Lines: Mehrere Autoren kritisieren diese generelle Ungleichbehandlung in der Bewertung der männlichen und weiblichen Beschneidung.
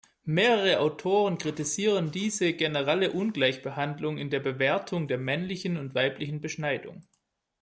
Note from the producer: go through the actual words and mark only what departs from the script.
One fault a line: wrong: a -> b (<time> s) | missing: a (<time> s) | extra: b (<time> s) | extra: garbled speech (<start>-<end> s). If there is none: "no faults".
no faults